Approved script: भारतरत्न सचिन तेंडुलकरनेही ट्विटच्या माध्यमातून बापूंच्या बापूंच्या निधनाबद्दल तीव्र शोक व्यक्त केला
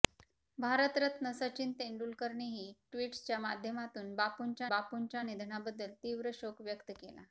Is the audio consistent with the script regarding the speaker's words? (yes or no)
yes